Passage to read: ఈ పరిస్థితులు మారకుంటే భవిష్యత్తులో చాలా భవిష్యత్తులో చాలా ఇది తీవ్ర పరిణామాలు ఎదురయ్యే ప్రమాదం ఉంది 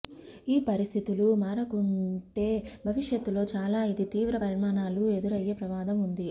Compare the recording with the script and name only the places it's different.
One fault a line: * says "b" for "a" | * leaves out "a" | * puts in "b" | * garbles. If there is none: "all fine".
* leaves out "భవిష్యత్తులో చాలా"